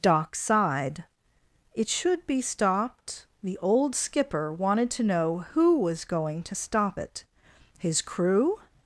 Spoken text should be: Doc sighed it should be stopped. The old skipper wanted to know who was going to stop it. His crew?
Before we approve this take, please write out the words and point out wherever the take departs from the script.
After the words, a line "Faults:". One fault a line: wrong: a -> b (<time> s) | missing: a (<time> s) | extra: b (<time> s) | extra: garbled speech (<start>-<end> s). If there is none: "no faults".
Doc sighed it should be stopped. The old skipper wanted to know who was going to stop it. His crew?
Faults:
no faults